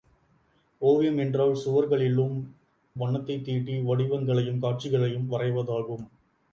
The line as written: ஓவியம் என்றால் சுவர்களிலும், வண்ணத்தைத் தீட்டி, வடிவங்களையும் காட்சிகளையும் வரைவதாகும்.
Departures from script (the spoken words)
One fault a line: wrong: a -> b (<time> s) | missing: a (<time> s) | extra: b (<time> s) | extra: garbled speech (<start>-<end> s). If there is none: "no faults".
no faults